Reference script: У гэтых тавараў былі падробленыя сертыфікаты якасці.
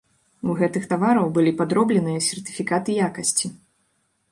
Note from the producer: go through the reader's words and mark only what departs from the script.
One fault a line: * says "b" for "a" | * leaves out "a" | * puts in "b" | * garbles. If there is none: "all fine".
all fine